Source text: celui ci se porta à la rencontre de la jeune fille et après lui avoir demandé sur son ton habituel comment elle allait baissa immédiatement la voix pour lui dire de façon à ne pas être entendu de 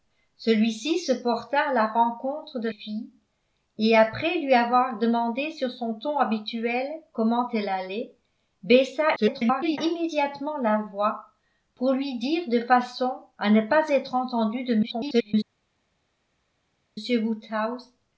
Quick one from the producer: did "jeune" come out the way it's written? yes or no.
no